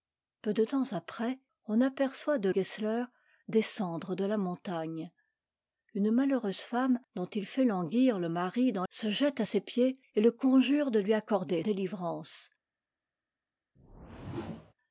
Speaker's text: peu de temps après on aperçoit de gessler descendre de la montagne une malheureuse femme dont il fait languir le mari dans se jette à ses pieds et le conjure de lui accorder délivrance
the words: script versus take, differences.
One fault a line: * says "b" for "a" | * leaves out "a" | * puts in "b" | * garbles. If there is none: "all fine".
all fine